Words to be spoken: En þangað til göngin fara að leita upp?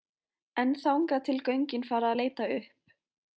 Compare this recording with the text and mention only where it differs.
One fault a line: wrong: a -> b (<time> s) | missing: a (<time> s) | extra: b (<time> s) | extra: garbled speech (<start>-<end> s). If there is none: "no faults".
no faults